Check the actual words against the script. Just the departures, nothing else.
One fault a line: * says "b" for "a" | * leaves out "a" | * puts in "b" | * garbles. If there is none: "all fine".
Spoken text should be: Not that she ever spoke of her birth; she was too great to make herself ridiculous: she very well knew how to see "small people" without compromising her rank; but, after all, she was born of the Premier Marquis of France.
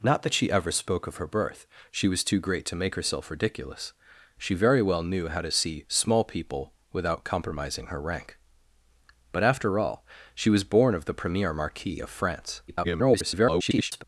* garbles